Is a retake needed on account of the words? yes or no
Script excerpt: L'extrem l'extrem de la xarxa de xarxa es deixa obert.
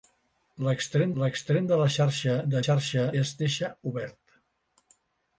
no